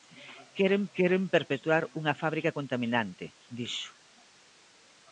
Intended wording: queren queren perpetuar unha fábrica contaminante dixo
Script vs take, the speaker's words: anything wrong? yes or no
no